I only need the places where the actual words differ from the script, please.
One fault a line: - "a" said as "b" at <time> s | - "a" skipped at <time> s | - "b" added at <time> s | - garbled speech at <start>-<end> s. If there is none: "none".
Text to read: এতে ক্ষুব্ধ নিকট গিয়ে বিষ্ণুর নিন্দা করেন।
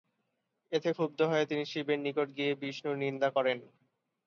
- "হয়ে তিনি শিবের" added at 1.3 s